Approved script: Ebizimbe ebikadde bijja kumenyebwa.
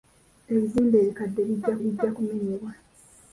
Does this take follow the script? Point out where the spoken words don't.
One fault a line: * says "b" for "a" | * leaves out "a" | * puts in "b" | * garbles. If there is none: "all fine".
* puts in "bijja"